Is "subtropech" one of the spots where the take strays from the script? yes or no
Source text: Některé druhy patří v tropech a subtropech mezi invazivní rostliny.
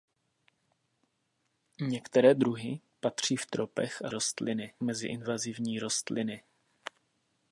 yes